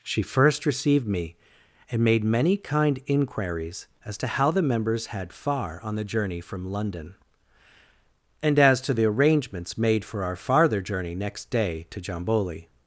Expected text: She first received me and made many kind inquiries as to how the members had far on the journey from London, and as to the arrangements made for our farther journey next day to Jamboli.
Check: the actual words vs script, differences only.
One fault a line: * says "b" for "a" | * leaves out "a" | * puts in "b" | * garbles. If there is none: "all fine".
all fine